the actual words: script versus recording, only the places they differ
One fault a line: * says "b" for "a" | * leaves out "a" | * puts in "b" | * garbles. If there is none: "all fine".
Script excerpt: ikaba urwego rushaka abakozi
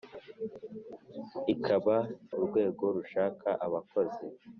all fine